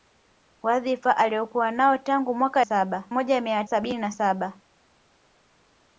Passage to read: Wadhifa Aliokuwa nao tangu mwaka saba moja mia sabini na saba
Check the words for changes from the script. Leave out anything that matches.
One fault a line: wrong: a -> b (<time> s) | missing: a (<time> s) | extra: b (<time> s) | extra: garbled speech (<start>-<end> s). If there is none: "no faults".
no faults